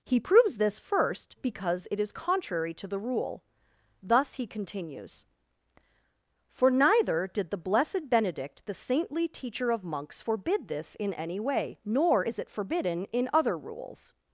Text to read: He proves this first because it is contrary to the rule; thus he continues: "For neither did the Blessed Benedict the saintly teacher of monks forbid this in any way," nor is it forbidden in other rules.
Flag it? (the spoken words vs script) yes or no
no